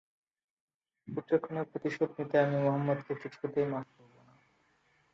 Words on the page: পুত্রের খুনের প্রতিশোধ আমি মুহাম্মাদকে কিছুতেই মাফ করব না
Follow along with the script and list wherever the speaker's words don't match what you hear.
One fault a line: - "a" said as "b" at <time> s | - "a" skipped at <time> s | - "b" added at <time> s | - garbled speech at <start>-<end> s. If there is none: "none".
- "নিতে" added at 2.2 s